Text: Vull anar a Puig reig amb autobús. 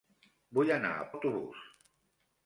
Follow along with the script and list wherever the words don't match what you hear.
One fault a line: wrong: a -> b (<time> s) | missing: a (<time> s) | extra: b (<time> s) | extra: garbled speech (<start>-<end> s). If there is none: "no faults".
missing: Puig reig amb (1.0 s)